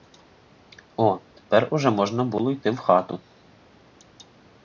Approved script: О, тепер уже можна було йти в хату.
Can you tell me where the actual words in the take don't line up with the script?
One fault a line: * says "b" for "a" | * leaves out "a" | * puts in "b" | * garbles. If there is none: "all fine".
all fine